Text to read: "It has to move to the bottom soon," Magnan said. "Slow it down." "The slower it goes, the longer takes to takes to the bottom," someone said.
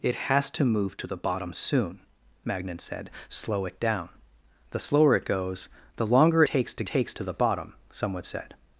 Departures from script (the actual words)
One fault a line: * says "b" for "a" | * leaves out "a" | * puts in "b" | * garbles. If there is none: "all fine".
all fine